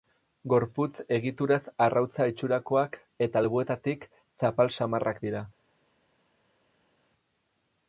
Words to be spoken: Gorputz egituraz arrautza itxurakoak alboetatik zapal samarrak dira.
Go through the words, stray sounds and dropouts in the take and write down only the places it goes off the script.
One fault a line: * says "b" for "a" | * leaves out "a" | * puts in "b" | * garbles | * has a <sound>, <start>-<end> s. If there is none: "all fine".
* puts in "eta"